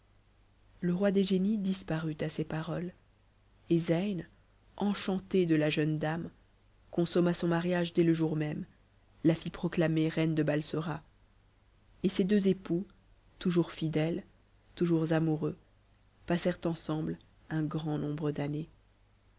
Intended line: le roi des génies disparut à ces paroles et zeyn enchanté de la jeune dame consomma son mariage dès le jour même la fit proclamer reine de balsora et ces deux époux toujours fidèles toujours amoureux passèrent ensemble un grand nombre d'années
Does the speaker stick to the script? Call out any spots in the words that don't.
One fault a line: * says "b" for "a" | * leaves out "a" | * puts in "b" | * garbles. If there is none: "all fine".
all fine